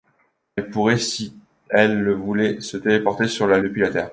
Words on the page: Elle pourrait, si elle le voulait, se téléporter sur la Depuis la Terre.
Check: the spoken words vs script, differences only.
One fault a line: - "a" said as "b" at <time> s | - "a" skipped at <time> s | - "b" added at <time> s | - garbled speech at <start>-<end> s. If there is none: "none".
none